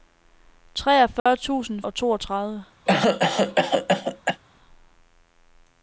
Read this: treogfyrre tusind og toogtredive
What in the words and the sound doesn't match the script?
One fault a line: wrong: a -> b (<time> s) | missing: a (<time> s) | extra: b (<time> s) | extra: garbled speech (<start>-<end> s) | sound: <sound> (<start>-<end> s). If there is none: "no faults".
sound: dropout (1.2-1.3 s)
sound: cough (2.9-4.4 s)